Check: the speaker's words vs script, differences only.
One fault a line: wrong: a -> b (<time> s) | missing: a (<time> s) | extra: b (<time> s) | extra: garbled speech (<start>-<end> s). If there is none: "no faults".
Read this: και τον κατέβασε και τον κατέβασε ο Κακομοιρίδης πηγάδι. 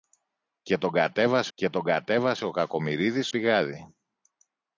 no faults